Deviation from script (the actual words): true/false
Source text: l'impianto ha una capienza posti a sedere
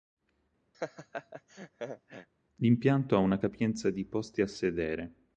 true